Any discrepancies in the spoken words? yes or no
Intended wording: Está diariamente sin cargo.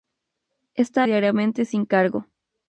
no